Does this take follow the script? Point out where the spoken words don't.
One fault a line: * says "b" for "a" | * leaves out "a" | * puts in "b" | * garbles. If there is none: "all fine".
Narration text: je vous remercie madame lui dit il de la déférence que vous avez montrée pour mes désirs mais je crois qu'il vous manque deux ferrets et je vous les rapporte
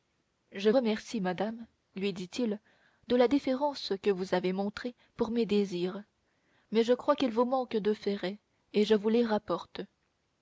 * leaves out "vous"